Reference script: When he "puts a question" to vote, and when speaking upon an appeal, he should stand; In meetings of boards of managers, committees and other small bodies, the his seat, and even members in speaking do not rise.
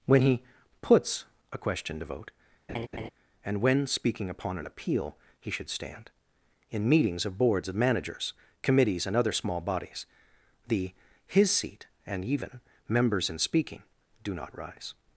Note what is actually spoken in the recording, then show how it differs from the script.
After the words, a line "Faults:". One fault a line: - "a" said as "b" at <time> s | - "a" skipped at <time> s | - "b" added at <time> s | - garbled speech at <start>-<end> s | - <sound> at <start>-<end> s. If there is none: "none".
When he "puts a question" to vote, and when speaking upon an appeal, he should stand; In meetings of boards of managers, committees and other small bodies, the his seat, and even members in speaking do not rise.
Faults:
- laugh at 2.7-3.1 s